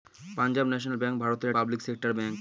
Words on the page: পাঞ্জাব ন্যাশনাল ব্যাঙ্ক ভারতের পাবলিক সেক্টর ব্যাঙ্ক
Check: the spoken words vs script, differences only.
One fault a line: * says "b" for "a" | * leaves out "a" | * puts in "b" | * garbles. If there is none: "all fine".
all fine